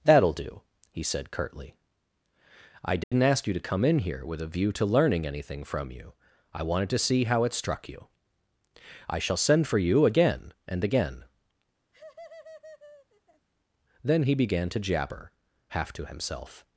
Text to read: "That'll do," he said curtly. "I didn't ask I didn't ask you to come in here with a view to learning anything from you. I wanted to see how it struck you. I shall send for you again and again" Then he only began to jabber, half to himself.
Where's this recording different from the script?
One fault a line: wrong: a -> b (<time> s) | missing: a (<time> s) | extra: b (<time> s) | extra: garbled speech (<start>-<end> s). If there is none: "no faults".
missing: I didn't ask (3.5 s)
missing: only (14.3 s)